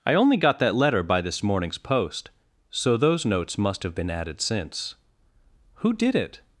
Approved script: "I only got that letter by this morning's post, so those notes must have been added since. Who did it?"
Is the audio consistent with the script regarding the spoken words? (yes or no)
yes